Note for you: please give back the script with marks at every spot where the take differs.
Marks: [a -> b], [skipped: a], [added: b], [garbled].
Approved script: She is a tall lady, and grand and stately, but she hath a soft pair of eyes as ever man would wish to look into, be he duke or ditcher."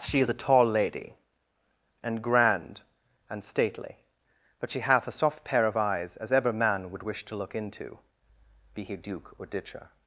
She is a tall lady, and grand and stately, but she hath a soft pair of eyes as ever man would wish to look into, be he duke or ditcher."